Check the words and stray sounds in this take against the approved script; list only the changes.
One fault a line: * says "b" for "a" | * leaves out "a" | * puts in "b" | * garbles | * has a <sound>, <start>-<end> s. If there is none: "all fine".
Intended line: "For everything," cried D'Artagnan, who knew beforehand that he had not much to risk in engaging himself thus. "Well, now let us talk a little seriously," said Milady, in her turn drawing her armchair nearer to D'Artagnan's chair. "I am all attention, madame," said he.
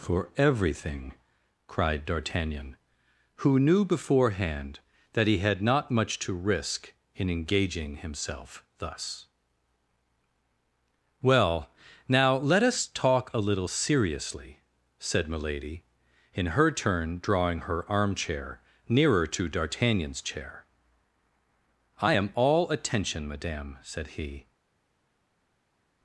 all fine